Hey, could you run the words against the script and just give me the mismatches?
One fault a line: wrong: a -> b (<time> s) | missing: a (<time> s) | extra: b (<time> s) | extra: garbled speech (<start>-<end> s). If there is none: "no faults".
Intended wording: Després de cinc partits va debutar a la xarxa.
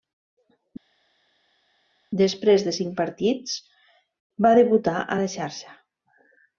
no faults